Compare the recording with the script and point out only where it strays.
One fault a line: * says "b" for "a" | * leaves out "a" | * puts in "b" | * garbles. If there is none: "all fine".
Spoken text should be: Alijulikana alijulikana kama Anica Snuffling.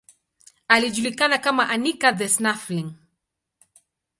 * leaves out "alijulikana"
* puts in "the"